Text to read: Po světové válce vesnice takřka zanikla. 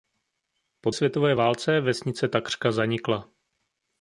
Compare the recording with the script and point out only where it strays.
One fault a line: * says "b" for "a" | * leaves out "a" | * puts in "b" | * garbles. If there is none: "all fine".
all fine